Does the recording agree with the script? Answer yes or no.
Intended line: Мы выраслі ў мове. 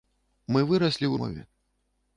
yes